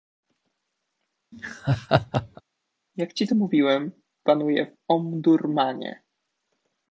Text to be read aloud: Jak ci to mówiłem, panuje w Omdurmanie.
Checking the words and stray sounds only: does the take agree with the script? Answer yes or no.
no